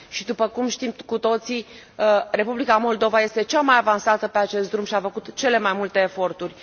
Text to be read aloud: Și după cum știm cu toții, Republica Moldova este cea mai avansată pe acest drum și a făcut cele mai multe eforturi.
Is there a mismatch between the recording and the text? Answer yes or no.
no